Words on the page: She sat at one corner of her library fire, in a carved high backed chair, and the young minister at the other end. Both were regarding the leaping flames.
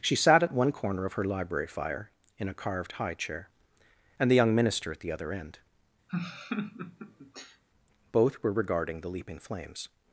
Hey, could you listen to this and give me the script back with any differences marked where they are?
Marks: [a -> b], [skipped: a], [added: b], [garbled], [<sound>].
She sat at one corner of her library fire, in a carved high [skipped: backed] chair, and the young minister at the other end. [laugh] Both were regarding the leaping flames.